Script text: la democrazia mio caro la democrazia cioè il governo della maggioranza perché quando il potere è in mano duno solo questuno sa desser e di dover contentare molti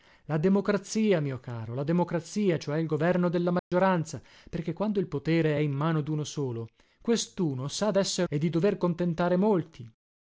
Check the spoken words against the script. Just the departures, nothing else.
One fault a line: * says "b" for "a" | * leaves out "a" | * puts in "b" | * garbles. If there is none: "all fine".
all fine